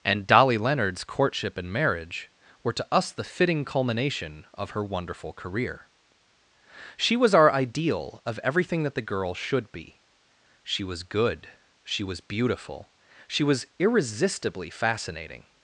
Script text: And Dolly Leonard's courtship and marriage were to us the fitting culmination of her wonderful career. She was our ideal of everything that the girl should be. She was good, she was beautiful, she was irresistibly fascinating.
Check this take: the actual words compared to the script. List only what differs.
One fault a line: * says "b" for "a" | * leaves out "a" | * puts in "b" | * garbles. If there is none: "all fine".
all fine